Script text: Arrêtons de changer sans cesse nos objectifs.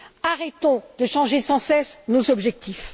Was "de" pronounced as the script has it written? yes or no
yes